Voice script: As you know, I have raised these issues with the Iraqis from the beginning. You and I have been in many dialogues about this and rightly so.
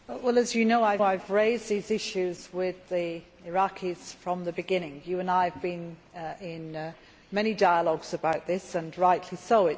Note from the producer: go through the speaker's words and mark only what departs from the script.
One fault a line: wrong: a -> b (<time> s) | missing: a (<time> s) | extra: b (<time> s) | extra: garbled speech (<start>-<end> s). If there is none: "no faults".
extra: I (1.0 s)